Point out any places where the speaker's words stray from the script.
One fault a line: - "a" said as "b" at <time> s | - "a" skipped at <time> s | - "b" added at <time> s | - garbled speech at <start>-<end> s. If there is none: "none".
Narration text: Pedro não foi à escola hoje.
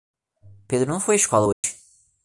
none